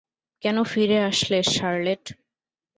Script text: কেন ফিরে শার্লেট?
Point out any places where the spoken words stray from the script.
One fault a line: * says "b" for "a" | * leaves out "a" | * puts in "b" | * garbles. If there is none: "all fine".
* puts in "আসলে"